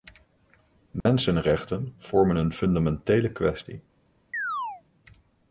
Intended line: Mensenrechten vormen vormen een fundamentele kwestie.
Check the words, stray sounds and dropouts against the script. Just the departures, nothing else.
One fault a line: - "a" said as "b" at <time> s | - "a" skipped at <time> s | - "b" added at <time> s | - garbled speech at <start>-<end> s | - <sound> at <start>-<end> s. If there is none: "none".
- dropout at 1.0-1.1 s
- "vormen" skipped at 2.4 s
- chirp at 4.3-4.8 s